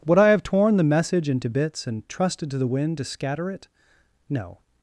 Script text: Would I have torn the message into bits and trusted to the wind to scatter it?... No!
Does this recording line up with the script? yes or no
yes